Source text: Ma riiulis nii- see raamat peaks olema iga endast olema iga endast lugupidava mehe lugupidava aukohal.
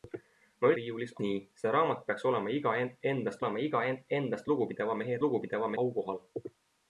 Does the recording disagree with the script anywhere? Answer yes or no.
no